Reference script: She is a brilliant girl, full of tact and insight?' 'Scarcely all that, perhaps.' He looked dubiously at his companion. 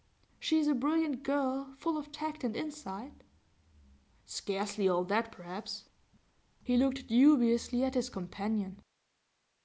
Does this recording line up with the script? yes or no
yes